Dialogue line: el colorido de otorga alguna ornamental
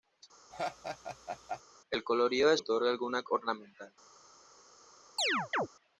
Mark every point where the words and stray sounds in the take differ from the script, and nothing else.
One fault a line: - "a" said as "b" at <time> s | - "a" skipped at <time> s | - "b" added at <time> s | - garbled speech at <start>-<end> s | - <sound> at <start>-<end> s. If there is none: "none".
- laugh at 0.5-1.6 s
- chirp at 5.2-5.7 s